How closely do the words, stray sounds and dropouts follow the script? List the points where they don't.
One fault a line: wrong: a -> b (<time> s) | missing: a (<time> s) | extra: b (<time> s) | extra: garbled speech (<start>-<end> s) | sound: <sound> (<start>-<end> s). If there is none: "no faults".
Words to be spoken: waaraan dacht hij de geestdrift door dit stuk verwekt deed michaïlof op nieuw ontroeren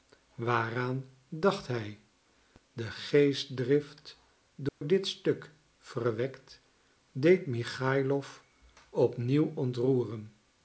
sound: dropout (4.7-4.8 s)